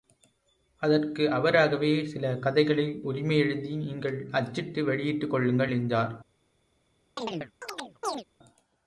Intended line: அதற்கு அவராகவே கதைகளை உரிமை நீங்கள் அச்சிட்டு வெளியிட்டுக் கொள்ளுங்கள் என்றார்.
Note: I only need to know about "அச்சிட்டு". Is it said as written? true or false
true